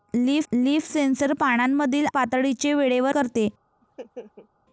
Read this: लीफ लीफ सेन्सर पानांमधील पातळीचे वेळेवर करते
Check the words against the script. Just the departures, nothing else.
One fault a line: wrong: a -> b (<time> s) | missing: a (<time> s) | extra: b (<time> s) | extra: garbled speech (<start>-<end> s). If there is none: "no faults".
no faults